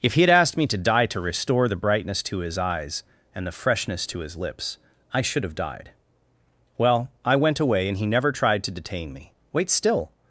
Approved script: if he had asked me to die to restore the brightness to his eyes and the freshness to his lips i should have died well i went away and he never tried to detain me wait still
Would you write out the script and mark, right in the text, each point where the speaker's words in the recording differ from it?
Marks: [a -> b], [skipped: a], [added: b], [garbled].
if he had asked me to die to restore the brightness to his eyes and the freshness to his lips i should have died well i went away and he never tried to detain me wait still